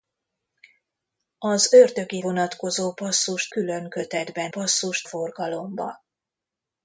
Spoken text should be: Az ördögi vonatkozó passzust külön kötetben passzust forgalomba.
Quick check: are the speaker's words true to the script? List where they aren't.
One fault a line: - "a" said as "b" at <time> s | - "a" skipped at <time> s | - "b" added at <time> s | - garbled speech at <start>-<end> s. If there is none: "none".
none